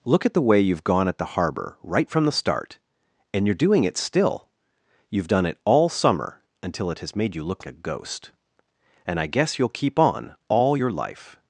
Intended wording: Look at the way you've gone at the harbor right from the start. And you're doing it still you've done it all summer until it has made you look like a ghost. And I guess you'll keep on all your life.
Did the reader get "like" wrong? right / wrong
wrong